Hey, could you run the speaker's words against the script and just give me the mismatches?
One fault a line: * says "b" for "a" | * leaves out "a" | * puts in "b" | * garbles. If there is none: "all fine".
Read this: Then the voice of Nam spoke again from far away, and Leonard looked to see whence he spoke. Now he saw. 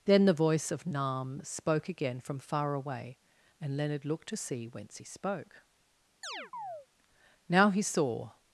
all fine